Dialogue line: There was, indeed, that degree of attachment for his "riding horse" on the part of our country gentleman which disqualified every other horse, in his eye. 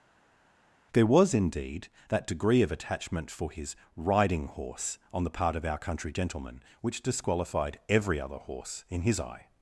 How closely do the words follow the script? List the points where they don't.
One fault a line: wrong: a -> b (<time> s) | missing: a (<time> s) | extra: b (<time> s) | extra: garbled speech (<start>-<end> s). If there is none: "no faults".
no faults